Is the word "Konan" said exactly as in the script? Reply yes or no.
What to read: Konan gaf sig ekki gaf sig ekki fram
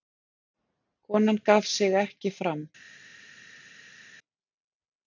yes